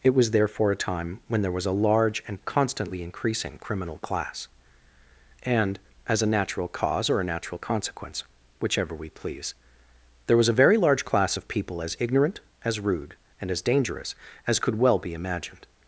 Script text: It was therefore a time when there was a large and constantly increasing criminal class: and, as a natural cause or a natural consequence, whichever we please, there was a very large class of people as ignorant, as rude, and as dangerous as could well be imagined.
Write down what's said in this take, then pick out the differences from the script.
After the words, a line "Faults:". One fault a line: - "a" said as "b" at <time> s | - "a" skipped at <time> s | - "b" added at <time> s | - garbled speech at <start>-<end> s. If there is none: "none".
It was therefore a time when there was a large and constantly increasing criminal class: and, as a natural cause or a natural consequence, whichever we please, there was a very large class of people as ignorant, as rude, and as dangerous as could well be imagined.
Faults:
none